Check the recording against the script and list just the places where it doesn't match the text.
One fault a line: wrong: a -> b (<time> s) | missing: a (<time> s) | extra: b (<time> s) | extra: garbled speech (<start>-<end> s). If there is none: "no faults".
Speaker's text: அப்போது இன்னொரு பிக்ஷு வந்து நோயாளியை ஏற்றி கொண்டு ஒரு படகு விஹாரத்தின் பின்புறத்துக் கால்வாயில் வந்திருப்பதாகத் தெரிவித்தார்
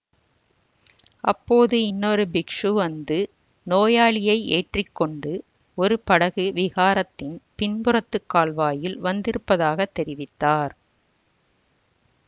no faults